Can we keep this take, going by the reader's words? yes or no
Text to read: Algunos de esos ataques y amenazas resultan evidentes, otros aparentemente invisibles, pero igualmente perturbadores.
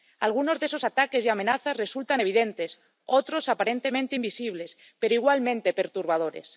yes